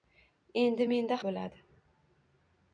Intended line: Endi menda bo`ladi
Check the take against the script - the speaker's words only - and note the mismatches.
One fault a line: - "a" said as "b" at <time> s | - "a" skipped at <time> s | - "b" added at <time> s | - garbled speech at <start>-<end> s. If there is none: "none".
none